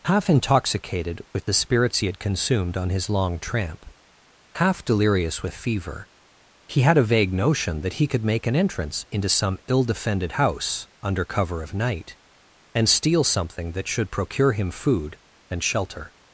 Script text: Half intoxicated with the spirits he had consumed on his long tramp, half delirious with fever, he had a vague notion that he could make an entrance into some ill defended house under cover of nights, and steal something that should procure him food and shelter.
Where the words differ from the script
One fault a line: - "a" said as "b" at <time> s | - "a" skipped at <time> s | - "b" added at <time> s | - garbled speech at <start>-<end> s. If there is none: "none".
- "nights" said as "night" at 11.7 s